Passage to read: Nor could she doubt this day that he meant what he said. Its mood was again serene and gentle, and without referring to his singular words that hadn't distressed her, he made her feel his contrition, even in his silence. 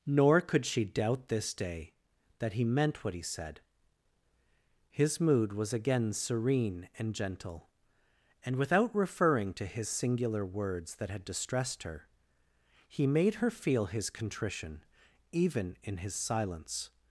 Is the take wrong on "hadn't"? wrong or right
wrong